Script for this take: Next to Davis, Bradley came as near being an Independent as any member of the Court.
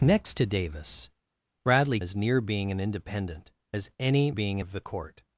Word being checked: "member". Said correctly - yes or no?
no